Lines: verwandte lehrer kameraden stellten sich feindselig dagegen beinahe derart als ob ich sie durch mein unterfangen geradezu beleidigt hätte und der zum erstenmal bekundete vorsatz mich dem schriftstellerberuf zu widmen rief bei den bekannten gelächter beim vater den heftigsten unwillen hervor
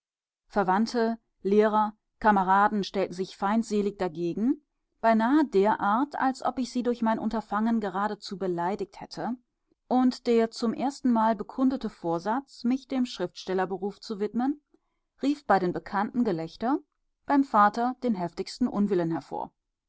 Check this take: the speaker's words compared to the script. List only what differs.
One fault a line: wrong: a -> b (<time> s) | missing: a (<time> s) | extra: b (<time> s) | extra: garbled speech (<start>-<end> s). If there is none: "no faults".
no faults